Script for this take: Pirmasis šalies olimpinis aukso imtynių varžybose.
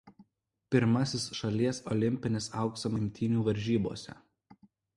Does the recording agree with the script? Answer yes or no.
yes